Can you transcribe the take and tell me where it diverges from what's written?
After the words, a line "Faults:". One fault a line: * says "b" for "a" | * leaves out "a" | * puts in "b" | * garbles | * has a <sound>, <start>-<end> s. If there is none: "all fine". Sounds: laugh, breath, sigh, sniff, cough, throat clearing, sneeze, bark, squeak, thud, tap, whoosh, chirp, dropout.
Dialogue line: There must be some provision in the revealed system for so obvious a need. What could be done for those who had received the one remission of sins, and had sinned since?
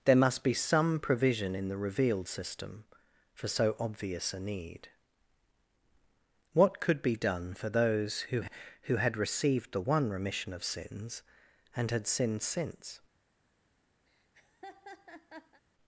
There must be some provision in the revealed system for so obvious a need. What could be done for those who who had received the one remission of sins, and had sinned since?
Faults:
* puts in "who"
* has a laugh, 14.1-15.6 s